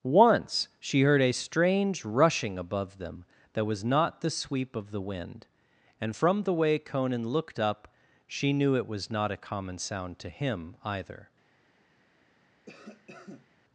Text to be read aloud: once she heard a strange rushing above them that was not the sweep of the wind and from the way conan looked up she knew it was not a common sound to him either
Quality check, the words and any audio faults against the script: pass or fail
fail